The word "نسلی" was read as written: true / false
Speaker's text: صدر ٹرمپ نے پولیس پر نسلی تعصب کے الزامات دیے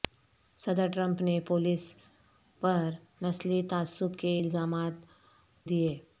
true